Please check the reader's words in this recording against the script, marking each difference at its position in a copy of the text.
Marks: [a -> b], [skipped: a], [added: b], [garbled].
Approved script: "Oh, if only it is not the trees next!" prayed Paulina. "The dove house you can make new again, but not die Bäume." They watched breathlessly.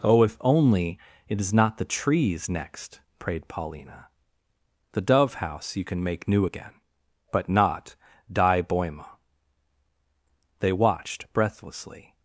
"Oh, if only it is not the trees next!" prayed Paulina. "The dove house you can make new again, but not die Bäume." They watched breathlessly.